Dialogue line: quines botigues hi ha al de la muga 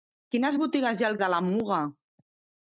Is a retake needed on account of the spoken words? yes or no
no